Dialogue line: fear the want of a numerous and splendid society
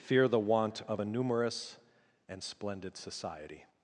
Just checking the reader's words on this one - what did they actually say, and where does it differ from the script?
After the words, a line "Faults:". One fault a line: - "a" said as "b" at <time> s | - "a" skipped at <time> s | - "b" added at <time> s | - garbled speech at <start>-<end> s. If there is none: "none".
fear the want of a numerous and splendid society
Faults:
none